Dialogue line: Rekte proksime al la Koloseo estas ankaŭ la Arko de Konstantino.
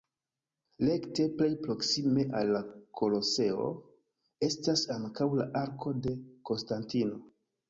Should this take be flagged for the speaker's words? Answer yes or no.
yes